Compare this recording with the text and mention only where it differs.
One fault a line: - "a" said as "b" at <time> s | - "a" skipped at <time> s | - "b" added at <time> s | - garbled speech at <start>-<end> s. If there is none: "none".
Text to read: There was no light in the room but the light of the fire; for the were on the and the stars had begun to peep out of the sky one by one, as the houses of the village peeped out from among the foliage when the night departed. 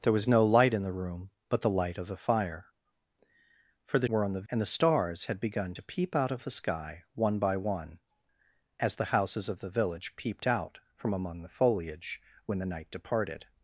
none